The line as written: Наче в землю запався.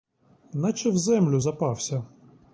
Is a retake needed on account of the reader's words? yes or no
no